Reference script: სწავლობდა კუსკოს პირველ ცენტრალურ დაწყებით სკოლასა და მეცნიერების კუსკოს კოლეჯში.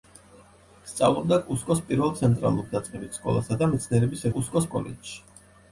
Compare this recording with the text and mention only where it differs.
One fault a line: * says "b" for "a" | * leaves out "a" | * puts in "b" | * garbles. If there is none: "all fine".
all fine